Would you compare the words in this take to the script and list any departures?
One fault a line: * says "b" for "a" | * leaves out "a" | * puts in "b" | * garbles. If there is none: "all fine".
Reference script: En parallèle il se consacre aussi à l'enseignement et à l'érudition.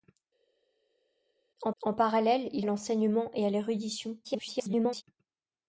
* puts in "en"
* leaves out "se consacre aussi"
* garbles